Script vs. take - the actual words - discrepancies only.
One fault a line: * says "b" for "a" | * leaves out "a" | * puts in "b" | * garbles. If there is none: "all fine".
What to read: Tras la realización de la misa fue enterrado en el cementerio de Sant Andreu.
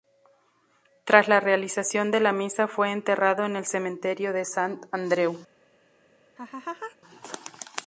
all fine